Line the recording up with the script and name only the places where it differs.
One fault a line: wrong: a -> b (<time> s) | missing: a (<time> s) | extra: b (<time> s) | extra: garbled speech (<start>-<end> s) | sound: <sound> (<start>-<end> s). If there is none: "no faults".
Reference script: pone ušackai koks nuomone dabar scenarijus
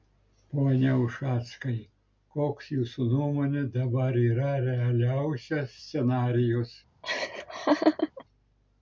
extra: jūsų (2.8 s)
extra: yra realiausias (4.2 s)
sound: laugh (7.0-8.2 s)